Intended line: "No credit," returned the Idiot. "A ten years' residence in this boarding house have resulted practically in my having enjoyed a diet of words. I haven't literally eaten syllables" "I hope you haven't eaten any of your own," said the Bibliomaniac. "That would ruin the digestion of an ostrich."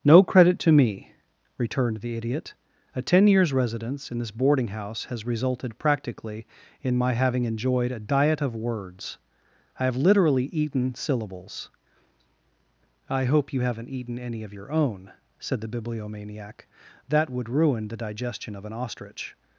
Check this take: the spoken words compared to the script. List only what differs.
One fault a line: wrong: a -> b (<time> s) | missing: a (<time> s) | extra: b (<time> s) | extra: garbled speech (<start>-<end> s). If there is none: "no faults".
extra: to me (0.6 s)
wrong: have -> has (5.0 s)
wrong: haven't -> have (9.8 s)